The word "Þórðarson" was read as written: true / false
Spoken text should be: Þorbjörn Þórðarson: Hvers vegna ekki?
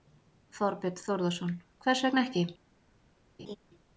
true